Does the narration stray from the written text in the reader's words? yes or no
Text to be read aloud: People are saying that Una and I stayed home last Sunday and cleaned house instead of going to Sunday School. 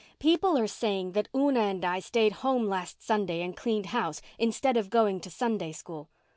no